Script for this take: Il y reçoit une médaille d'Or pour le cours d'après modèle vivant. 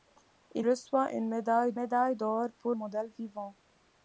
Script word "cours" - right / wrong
wrong